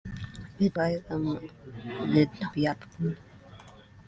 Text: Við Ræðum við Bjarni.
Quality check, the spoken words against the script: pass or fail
pass